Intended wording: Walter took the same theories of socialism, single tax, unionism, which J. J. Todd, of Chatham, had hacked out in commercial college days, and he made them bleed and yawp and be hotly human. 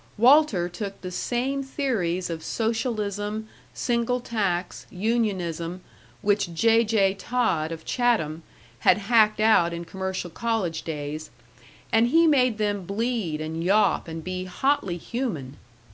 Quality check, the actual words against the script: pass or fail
pass